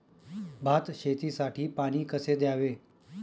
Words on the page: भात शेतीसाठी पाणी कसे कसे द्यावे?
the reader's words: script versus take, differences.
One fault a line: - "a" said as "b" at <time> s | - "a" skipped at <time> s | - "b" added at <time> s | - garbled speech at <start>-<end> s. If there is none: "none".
- "कसे" skipped at 2.4 s